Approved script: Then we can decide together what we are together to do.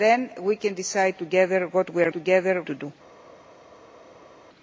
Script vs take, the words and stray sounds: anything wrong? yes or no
no